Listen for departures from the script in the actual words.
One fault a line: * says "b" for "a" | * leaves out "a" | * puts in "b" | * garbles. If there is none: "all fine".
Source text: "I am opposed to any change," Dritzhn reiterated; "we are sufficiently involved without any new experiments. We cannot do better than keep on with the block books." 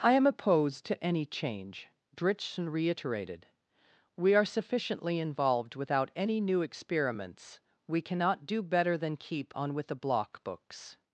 all fine